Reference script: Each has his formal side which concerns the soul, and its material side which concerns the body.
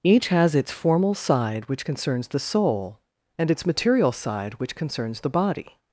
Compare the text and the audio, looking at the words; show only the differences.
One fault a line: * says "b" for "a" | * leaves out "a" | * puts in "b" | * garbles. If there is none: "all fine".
* says "its" for "his"